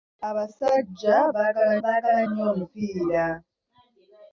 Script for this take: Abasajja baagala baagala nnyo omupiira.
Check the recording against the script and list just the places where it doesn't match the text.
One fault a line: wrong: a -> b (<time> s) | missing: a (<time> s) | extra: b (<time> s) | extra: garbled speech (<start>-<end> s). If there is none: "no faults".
no faults